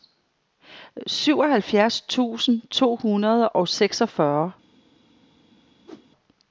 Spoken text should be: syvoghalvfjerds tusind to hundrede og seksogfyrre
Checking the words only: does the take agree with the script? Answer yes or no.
yes